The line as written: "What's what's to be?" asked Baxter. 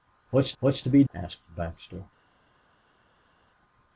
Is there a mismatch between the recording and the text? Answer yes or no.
no